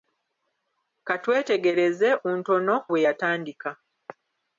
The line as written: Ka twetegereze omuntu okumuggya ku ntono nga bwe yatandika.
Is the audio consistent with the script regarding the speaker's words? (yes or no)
no